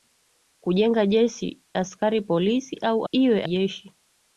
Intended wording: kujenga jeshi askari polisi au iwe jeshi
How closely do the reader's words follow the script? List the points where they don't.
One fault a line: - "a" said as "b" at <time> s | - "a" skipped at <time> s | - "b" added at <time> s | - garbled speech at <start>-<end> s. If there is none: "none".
none